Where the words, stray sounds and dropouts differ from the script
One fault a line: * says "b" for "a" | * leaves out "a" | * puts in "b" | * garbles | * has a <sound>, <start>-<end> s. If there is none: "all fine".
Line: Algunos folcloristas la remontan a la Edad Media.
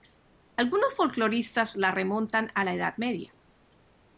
all fine